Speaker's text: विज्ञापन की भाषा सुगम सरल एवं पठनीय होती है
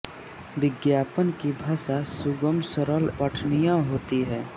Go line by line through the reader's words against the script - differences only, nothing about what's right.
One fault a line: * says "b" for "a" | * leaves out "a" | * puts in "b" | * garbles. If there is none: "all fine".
* leaves out "एवं"